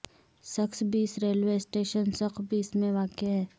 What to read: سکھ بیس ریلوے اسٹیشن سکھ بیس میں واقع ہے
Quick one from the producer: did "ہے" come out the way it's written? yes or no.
yes